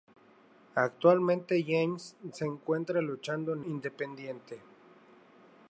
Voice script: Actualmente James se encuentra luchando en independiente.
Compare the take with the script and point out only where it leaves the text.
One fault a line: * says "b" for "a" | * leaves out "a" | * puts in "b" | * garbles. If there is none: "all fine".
all fine